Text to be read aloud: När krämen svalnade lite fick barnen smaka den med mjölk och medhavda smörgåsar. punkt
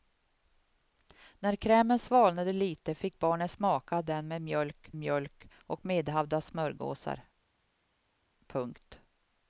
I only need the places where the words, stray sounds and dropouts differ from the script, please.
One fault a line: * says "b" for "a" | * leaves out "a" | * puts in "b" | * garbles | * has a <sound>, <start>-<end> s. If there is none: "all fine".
* puts in "mjölk"